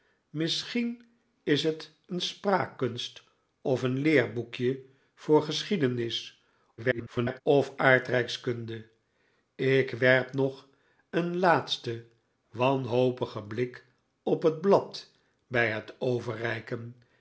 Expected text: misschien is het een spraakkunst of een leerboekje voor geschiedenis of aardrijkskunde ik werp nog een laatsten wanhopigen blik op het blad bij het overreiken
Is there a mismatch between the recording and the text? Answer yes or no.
yes